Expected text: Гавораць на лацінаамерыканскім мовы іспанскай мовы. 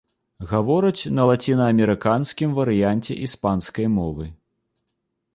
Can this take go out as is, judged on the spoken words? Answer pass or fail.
fail